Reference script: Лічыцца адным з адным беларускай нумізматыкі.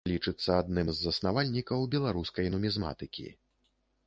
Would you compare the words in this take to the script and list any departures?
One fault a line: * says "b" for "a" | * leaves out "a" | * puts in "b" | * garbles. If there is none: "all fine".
* says "заснавальнікаў" for "адным"